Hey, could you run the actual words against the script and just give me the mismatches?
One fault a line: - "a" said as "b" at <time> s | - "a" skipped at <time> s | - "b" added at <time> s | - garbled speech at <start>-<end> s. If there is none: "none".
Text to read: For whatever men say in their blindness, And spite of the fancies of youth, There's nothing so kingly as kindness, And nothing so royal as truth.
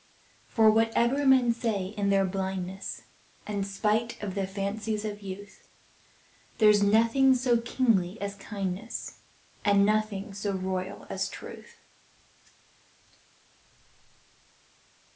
none